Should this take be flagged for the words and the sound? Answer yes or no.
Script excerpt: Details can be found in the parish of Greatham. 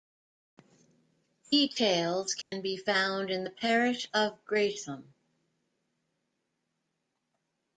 yes